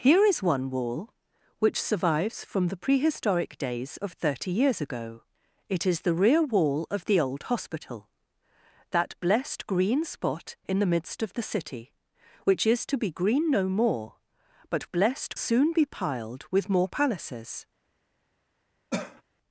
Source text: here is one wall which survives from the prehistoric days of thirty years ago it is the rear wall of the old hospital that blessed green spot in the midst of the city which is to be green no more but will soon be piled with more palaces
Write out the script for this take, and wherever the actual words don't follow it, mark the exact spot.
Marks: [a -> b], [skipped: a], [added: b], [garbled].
here is one wall which survives from the prehistoric days of thirty years ago it is the rear wall of the old hospital that blessed green spot in the midst of the city which is to be green no more but [will -> blessed] soon be piled with more palaces